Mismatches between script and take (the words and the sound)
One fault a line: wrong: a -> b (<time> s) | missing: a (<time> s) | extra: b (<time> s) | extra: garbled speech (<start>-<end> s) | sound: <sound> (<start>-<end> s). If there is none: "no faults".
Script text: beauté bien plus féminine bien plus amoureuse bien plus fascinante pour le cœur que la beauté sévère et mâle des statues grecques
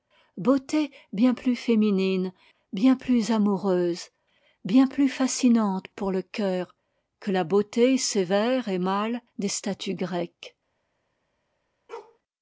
sound: bark (11.9-12.2 s)